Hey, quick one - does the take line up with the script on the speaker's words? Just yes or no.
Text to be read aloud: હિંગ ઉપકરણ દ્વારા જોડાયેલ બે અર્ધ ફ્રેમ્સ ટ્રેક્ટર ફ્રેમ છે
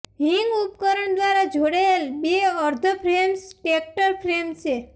yes